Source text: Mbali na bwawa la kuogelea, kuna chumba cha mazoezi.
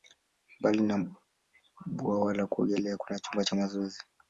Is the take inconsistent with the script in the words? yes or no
no